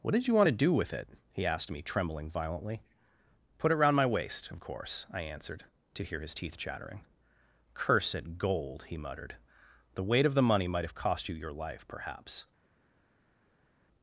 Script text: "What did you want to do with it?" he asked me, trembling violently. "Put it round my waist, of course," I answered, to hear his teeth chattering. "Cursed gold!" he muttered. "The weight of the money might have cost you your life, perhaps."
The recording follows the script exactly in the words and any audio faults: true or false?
true